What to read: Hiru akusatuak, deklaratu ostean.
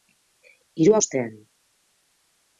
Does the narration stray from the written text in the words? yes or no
yes